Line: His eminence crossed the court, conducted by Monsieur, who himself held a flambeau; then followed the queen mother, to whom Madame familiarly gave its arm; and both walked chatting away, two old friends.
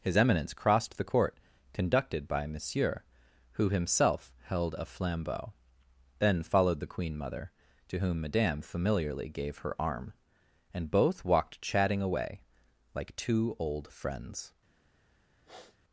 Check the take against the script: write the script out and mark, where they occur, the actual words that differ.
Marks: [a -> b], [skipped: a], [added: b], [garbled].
His eminence crossed the court, conducted by Monsieur, who himself held a flambeau; then followed the queen mother, to whom Madame familiarly gave [its -> her] arm; and both walked chatting away, [added: like] two old friends.